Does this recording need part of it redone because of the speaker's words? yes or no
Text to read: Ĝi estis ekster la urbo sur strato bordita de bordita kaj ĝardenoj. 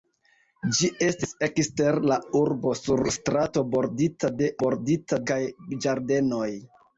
no